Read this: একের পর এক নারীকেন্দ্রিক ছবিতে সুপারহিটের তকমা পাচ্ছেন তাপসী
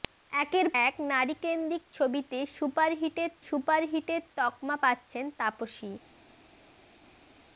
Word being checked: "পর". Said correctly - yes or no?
no